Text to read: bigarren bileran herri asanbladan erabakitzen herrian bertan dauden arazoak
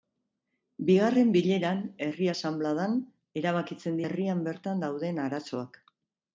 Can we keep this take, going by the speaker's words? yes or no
yes